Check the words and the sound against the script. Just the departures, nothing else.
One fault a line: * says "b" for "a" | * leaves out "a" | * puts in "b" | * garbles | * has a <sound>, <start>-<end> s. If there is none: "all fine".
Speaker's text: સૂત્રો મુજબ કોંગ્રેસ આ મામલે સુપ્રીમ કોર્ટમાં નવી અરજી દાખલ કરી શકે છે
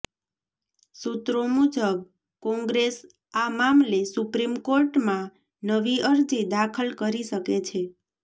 all fine